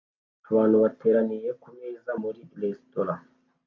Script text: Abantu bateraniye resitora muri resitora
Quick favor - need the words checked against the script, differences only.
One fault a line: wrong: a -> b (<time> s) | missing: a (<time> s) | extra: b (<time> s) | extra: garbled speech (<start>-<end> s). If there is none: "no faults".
wrong: resitora -> kumeza (1.6 s)